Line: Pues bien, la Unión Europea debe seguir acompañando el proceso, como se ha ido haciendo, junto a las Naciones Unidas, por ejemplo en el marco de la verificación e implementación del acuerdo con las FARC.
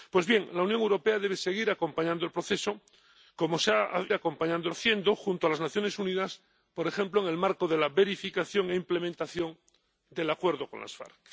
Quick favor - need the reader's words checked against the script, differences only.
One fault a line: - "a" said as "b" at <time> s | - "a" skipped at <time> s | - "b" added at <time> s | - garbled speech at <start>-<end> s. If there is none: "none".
- "ido" said as "acompañando" at 4.1 s